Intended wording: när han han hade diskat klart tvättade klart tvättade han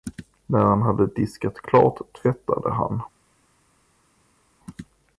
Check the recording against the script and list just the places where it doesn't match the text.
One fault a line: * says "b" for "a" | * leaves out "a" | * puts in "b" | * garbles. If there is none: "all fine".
* leaves out "han"
* leaves out "klart tvättade"